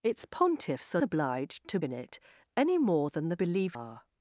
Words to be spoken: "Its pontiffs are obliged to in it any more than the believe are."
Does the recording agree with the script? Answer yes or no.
yes